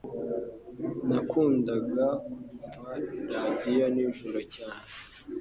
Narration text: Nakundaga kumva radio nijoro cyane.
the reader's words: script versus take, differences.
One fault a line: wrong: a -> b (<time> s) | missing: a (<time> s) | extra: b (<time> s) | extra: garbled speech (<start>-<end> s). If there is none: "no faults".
no faults